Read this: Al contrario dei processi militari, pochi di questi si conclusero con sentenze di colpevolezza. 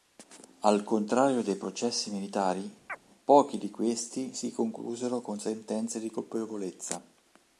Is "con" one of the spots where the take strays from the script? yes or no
no